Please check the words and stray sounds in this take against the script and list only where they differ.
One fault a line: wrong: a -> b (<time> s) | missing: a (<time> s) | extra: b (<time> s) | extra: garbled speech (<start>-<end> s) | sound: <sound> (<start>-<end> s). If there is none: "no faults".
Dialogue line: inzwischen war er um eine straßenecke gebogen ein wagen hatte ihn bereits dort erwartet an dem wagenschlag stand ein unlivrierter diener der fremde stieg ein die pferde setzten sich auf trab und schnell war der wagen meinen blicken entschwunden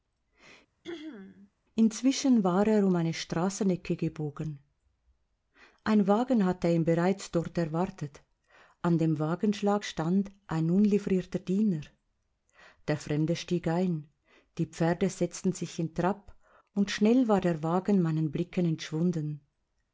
sound: throat clearing (0.8-1.5 s)
wrong: auf -> in (15.8 s)